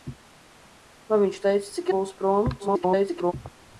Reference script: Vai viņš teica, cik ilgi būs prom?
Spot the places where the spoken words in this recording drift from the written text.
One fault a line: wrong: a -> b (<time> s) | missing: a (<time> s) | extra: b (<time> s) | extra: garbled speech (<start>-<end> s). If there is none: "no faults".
missing: ilgi (1.9 s)
extra: garbled speech (2.6-3.3 s)